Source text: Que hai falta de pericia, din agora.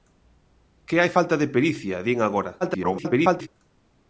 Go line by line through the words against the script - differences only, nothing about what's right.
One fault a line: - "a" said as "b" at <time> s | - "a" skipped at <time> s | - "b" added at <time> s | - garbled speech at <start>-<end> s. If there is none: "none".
- garbled speech at 2.6-3.5 s